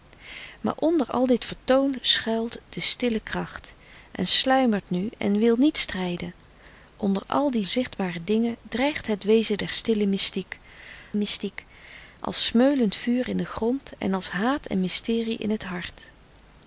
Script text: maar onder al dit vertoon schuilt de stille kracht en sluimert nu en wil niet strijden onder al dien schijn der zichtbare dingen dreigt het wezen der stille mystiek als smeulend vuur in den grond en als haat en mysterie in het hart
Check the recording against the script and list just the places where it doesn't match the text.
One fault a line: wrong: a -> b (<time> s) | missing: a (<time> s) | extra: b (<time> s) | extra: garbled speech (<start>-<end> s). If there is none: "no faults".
missing: schijn der (7.7 s)
extra: mystiek (11.1 s)